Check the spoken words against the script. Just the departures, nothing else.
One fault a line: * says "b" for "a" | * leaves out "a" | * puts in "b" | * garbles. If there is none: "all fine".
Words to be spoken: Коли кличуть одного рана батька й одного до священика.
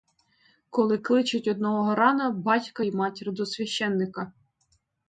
* says "матір" for "одного"